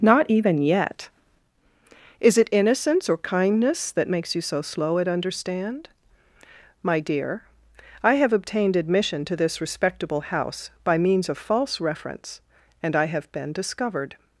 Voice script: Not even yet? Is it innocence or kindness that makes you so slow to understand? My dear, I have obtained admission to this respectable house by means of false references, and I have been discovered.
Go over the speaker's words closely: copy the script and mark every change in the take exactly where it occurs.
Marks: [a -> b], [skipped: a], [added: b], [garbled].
Not even yet? Is it innocence or kindness that makes you so slow [to -> at] understand? My dear, I have obtained admission to this respectable house by means of false [references, -> reference] and I have been discovered.